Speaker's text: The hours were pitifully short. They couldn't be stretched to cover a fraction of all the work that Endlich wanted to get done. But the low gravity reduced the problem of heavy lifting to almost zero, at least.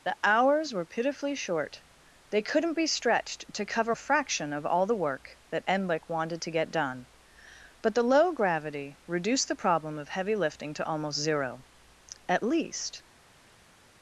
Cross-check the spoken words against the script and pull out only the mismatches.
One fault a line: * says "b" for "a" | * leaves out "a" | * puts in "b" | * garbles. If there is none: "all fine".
all fine